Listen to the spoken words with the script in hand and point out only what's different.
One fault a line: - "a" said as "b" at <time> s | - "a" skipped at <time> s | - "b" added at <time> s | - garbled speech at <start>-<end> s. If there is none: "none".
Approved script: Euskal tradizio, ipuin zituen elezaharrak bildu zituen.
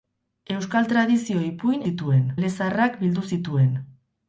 none